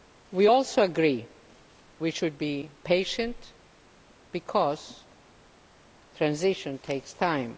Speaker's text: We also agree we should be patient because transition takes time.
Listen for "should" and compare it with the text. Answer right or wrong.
right